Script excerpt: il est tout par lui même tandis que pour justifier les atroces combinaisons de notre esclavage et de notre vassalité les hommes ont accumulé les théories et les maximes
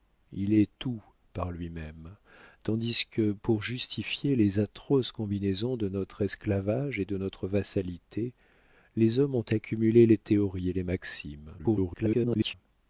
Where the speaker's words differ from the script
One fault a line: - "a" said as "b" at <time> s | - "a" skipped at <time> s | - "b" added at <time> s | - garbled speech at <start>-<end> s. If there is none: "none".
- garbled speech at 11.6-12.5 s